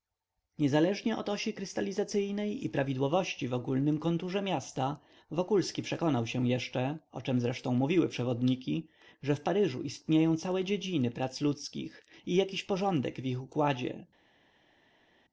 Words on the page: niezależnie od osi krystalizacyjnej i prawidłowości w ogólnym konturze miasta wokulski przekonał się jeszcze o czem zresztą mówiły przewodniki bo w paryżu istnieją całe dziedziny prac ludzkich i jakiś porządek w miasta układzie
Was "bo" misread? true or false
true